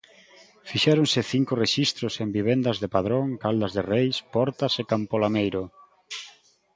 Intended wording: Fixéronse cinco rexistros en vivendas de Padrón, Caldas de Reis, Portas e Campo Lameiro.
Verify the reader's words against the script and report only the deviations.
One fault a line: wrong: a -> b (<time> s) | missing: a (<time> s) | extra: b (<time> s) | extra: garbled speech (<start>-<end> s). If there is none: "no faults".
no faults